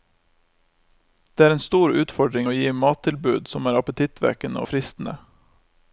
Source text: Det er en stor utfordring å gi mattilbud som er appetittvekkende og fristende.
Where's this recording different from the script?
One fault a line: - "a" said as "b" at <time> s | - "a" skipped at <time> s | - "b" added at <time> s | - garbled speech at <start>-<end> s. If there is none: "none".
none